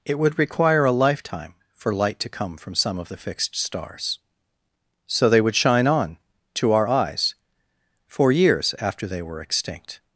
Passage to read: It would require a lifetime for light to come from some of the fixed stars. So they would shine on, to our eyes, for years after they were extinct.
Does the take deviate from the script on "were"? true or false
false